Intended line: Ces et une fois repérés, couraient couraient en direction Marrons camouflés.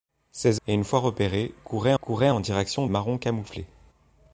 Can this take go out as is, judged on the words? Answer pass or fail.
pass